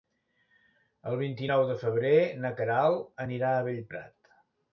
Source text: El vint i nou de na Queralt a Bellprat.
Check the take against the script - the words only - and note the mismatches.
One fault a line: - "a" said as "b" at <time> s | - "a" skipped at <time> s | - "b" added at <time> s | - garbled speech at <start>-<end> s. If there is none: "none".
- "febrer" added at 1.8 s
- "anirà" added at 3.3 s